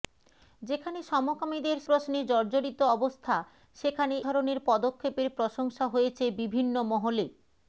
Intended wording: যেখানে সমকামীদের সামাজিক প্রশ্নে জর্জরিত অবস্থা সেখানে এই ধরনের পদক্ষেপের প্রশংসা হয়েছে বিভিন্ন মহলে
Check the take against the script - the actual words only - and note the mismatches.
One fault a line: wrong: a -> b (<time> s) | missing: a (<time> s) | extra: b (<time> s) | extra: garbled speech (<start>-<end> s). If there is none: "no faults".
missing: সামাজিক (1.8 s)
missing: এই (4.2 s)